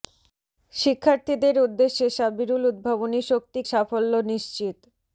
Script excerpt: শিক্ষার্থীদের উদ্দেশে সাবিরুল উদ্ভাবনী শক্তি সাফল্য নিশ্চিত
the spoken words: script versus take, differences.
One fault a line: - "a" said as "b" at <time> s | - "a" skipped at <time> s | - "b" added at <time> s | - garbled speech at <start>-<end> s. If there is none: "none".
none